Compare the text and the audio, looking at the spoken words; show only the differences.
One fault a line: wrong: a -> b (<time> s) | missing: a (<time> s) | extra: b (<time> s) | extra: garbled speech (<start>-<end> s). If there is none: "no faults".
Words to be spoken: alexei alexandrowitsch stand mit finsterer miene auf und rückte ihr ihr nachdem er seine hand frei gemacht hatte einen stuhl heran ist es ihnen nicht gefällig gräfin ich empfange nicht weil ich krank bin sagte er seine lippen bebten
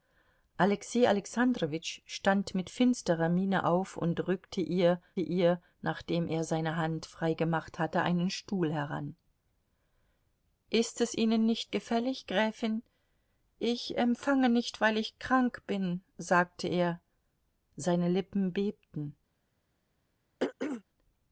no faults